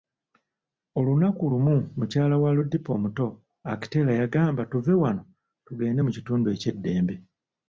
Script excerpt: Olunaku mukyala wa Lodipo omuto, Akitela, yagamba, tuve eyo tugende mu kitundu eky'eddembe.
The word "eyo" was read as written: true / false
false